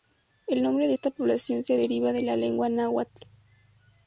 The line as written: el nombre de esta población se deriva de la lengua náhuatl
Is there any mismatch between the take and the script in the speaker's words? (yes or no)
no